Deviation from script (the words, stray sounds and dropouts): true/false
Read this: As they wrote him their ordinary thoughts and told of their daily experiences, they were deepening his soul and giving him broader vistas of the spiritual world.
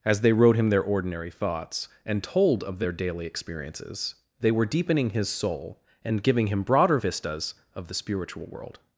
false